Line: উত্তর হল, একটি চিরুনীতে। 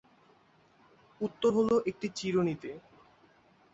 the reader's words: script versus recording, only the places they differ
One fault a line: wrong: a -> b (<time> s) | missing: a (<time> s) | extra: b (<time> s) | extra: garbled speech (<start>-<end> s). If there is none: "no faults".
no faults